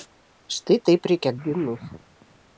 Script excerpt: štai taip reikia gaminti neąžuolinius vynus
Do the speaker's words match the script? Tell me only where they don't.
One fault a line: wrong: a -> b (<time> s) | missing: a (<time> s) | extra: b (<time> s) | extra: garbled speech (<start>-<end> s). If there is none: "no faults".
missing: gaminti neąžuolinius (1.3 s)